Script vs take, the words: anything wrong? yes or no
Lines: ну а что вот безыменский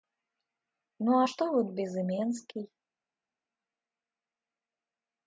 no